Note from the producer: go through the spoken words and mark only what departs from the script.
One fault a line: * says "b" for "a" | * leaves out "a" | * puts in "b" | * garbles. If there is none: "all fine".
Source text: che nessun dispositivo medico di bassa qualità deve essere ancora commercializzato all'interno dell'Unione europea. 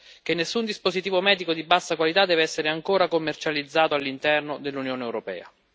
all fine